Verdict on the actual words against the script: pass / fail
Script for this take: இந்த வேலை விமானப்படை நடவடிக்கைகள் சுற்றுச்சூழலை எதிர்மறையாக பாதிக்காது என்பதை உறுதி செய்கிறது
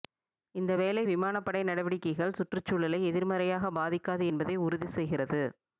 pass